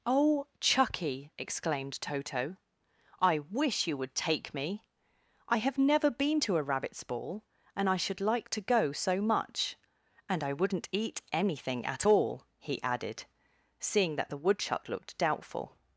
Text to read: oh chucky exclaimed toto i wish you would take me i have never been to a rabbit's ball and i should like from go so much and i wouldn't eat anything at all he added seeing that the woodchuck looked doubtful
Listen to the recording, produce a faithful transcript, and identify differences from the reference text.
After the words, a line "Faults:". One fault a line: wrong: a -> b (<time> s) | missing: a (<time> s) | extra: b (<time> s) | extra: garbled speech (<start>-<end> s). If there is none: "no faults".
oh chucky exclaimed toto i wish you would take me i have never been to a rabbit's ball and i should like to go so much and i wouldn't eat anything at all he added seeing that the woodchuck looked doubtful
Faults:
wrong: from -> to (8.5 s)